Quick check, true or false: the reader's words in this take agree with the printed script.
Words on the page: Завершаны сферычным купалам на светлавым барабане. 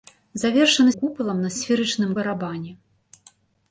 false